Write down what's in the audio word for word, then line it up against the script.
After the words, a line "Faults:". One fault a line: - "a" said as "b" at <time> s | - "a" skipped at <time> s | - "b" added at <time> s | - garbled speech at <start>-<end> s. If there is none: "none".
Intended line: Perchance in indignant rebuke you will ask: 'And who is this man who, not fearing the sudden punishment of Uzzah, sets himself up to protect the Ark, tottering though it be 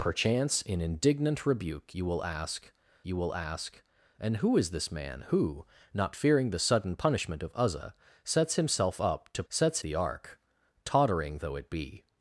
Perchance in indignant rebuke you will ask you will ask: 'And who is this man who, not fearing the sudden punishment of Uzzah, sets himself up to sets the Ark, tottering though it be
Faults:
- "you will ask" added at 3.0 s
- "protect" said as "sets" at 9.5 s